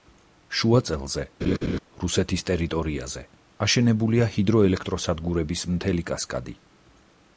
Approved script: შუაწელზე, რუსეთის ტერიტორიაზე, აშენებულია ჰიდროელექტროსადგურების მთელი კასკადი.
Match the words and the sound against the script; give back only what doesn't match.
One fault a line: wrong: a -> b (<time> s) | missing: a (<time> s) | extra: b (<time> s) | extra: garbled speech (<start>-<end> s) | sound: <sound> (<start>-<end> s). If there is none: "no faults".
sound: laugh (1.4-1.8 s)